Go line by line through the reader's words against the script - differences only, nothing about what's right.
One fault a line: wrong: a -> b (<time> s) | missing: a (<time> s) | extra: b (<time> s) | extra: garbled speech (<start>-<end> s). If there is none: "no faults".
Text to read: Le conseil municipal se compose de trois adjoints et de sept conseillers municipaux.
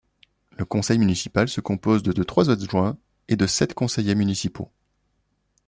extra: de (2.1 s)